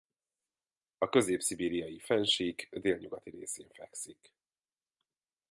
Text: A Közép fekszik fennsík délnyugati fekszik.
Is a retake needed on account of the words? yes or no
yes